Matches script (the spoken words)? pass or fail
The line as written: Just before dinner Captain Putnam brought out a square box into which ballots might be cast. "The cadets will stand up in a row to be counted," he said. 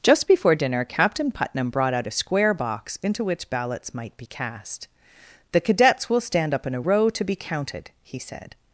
pass